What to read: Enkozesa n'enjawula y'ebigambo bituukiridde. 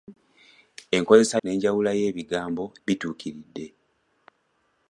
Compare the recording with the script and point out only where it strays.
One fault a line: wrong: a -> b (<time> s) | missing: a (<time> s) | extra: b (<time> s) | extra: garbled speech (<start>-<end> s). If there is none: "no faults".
no faults